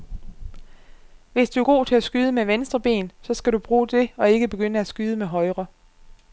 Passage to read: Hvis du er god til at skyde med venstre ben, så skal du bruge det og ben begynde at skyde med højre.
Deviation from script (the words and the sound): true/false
true